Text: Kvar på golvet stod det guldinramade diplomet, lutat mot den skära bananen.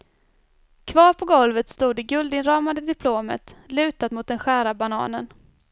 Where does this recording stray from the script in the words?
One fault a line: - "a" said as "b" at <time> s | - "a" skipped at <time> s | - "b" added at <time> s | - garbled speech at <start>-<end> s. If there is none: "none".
none